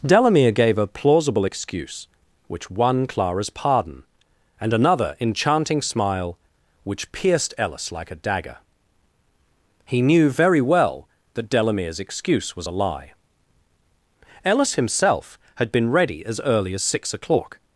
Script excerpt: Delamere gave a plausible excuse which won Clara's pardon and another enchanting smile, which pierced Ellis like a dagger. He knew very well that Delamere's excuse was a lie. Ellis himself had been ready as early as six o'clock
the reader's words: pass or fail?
pass